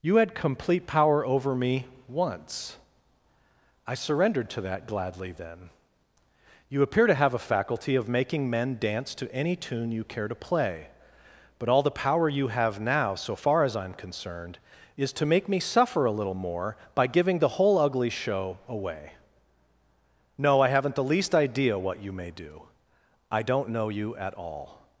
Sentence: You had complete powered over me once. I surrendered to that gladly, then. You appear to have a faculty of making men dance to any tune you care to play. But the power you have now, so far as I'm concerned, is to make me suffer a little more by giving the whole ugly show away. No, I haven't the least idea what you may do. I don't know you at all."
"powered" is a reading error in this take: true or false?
true